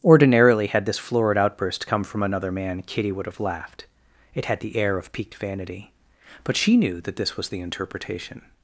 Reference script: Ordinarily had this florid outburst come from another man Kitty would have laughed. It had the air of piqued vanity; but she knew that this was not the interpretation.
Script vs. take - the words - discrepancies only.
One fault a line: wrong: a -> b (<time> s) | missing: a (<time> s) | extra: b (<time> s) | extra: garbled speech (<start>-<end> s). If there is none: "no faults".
missing: not (7.5 s)